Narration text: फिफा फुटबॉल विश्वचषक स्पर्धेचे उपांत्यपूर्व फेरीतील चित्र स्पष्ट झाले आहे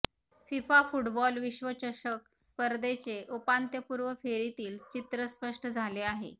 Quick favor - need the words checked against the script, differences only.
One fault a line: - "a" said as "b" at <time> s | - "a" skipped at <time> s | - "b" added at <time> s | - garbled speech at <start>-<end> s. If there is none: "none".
none